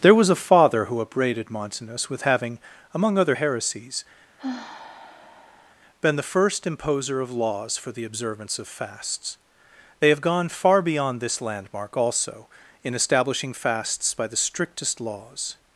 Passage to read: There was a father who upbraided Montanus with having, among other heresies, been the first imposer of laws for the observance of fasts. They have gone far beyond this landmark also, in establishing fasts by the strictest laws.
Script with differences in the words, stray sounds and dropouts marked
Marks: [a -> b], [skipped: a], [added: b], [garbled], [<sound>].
There was a father who upbraided Montanus with having, among other heresies, [sigh] been the first imposer of laws for the observance of fasts. They have gone far beyond this landmark also, in establishing fasts by the strictest laws.